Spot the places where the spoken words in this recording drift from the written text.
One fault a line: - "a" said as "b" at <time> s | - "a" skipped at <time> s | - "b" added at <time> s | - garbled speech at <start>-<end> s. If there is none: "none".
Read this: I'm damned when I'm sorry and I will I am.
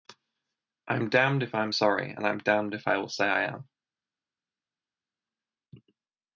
- "when" said as "if" at 1.4 s
- "I'm damned if" added at 2.3 s
- "say" added at 3.1 s